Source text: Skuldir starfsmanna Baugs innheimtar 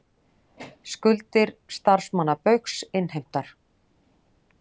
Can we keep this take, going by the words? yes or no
yes